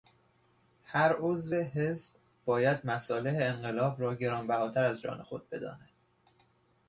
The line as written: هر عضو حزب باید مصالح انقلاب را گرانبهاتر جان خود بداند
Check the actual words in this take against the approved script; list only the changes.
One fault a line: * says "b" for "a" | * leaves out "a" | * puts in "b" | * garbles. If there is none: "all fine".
* puts in "از"